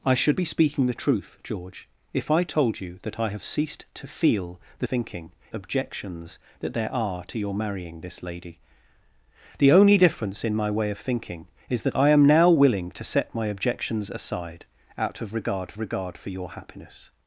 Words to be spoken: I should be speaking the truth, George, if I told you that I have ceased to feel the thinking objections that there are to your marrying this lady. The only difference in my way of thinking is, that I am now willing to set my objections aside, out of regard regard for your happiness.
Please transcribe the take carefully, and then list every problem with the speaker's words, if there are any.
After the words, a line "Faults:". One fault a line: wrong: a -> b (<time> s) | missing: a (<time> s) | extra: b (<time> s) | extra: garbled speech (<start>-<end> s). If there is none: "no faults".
I should be speaking the truth, George, if I told you that I have ceased to feel the thinking objections that there are to your marrying this lady. The only difference in my way of thinking is, that I am now willing to set my objections aside, out of regard regard for your happiness.
Faults:
no faults